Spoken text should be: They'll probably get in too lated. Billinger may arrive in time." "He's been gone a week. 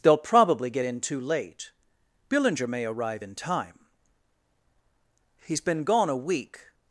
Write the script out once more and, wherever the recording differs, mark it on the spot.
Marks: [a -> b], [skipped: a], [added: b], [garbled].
They'll probably get in too [lated. -> late] Billinger may arrive in time." "He's been gone a week.